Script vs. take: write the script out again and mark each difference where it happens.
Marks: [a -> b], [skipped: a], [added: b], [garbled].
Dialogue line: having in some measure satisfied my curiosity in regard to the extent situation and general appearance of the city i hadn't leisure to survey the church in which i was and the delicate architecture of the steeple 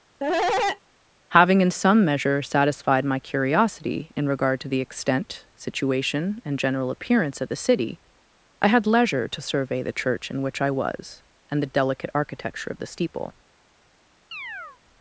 having in some measure satisfied my curiosity in regard to the extent situation and general appearance of the city i [hadn't -> had] leisure to survey the church in which i was and the delicate architecture of the steeple